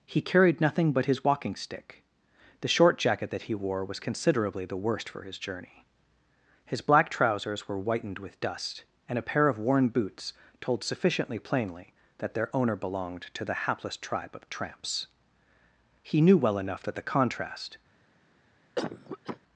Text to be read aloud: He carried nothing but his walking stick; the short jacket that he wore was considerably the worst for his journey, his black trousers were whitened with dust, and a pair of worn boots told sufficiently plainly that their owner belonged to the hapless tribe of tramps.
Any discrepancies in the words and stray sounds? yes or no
yes